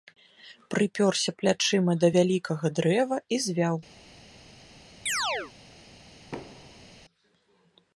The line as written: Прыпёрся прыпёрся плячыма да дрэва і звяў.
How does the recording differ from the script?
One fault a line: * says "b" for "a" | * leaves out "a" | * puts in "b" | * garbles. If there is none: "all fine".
* leaves out "прыпёрся"
* puts in "вялікага"